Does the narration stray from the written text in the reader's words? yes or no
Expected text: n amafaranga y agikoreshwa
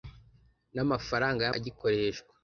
no